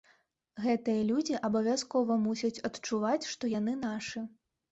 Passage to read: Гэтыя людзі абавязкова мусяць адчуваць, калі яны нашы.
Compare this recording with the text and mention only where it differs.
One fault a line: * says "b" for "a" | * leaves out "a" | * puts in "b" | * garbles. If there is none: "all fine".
* says "што" for "калі"